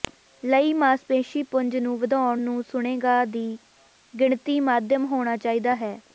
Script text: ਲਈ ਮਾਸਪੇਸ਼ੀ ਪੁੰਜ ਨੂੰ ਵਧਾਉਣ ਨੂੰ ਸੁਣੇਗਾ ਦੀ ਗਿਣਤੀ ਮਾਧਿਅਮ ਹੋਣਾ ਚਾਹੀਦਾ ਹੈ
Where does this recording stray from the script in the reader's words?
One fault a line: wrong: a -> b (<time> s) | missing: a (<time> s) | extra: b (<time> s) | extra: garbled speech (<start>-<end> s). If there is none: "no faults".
no faults